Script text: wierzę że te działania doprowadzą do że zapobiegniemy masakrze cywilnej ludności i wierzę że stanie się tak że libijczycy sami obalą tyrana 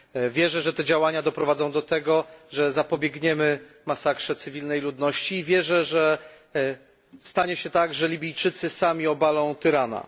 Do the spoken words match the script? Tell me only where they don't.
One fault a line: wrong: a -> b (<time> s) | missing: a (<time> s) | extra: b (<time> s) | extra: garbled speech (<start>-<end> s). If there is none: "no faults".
extra: tego (1.8 s)